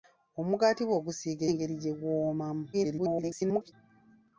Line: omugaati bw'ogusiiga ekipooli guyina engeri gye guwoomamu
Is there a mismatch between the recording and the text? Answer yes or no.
yes